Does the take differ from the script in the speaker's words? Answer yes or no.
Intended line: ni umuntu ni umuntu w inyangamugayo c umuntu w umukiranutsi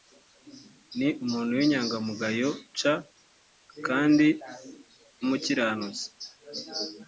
yes